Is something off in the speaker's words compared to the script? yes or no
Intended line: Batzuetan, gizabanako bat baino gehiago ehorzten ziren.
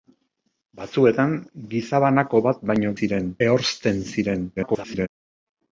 yes